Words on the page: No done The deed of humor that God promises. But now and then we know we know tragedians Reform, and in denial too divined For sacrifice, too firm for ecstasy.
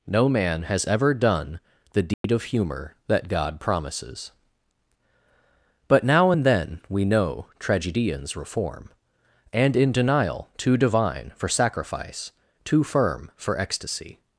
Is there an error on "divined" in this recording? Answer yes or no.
yes